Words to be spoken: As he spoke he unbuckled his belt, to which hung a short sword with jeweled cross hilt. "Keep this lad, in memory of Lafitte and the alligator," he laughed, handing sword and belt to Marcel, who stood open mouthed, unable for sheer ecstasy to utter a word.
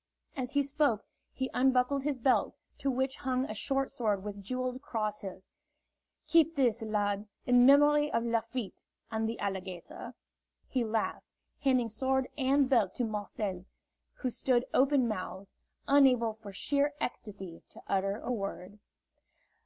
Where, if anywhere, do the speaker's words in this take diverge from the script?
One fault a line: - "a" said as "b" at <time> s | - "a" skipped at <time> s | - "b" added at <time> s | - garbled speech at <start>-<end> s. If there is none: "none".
none